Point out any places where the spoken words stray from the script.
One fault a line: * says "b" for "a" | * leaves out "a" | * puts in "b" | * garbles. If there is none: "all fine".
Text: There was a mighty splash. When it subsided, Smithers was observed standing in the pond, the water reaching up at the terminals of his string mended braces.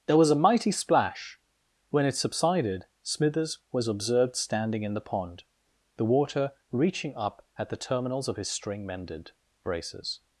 all fine